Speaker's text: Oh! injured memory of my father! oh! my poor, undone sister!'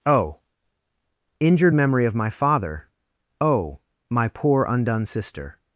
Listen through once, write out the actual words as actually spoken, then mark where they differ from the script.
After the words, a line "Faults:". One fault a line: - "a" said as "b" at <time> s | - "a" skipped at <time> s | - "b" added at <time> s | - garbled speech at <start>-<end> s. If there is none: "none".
Oh! injured memory of my father! oh! my poor, undone sister!'
Faults:
none